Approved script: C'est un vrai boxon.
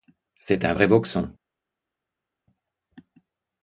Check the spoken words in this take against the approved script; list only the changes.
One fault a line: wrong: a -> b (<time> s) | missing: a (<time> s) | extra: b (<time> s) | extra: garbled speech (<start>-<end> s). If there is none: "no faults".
no faults